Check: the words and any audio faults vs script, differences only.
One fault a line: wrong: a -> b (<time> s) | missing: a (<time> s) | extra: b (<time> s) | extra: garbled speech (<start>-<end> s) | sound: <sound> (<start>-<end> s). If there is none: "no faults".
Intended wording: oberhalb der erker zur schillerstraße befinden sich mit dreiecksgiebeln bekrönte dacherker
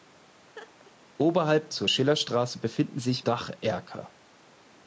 sound: laugh (0.5-0.9 s)
missing: der erker (1.7 s)
missing: mit dreiecksgiebeln bekrönte (3.2 s)